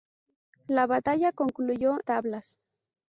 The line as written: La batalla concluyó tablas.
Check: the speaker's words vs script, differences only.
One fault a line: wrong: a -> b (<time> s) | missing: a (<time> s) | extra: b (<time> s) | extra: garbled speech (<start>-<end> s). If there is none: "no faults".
no faults